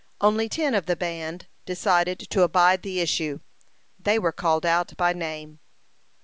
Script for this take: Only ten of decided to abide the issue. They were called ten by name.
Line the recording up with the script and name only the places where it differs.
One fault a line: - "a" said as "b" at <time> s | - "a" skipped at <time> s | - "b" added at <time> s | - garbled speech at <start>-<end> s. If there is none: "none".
- "the band" added at 0.8 s
- "ten" said as "out" at 4.7 s